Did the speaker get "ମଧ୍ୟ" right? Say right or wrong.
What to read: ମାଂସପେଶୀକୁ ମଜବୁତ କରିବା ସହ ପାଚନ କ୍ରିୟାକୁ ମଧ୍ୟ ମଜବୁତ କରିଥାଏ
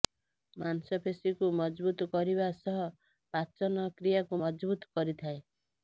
wrong